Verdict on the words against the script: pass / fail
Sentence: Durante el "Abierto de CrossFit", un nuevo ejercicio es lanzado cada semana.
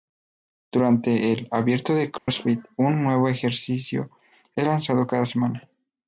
pass